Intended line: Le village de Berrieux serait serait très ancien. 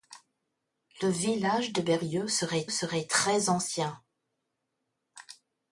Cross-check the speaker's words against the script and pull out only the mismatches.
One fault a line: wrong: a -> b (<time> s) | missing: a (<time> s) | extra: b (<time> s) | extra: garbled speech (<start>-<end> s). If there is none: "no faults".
no faults